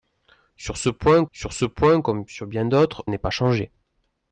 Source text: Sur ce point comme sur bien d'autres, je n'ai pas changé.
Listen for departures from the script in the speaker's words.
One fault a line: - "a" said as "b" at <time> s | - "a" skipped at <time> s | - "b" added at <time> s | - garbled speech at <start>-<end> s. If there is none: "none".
- "sur ce point" added at 1.3 s
- "je" skipped at 3.0 s